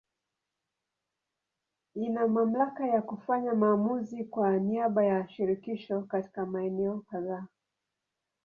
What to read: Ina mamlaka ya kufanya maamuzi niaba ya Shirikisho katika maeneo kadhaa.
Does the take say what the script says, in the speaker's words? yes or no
no